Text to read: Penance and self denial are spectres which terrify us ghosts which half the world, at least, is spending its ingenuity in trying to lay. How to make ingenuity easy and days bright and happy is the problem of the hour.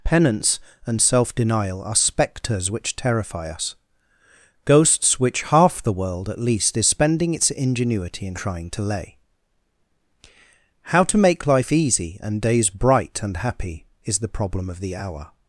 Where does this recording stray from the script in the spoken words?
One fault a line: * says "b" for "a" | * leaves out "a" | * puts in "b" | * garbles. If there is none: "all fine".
* says "life" for "ingenuity"